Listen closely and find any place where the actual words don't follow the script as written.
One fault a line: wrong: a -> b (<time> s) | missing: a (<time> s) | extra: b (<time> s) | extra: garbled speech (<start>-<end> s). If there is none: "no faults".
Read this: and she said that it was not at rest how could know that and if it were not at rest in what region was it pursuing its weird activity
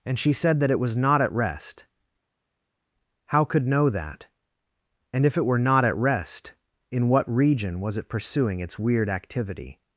no faults